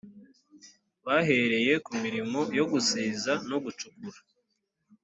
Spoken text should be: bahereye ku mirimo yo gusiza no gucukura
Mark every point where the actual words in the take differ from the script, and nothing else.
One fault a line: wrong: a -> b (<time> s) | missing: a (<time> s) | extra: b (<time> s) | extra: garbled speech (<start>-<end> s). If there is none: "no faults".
no faults